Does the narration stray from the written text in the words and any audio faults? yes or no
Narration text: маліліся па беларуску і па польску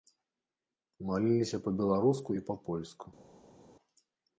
no